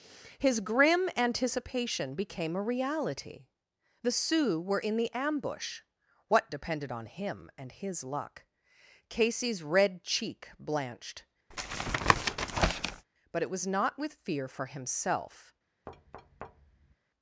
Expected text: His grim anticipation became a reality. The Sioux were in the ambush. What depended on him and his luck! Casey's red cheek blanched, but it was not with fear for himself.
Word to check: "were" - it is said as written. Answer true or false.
true